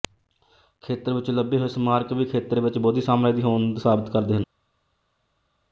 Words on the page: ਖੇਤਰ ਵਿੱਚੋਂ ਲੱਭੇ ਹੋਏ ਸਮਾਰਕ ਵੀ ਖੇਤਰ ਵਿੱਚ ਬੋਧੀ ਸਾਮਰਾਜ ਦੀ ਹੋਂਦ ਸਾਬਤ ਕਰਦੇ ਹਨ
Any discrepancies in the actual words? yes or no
no